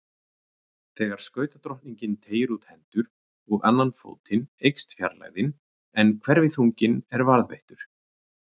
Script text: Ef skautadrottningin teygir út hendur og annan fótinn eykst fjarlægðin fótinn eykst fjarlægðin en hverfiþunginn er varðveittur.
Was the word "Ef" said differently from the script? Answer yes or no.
yes